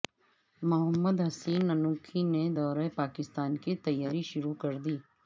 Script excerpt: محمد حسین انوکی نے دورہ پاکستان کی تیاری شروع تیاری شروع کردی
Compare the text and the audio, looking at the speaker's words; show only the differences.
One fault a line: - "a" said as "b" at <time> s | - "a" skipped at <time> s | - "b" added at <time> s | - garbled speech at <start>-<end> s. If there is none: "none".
- "تیاری شروع" skipped at 4.5 s